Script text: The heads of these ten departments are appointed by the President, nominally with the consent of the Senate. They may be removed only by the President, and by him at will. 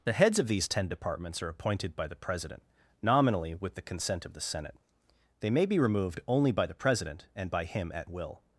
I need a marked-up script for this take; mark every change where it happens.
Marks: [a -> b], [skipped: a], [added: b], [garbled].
The heads of these ten departments are appointed by the President, nominally with the consent of the Senate. They may be removed only by the President, and by him at will.